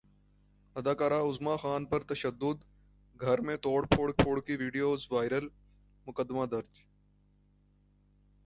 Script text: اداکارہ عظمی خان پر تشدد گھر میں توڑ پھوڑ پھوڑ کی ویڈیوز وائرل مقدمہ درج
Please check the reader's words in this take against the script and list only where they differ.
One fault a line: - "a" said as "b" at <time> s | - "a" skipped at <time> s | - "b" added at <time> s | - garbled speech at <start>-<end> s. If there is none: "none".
none